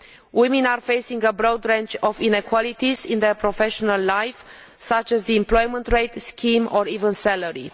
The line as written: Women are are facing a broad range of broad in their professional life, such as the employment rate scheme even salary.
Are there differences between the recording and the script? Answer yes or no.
yes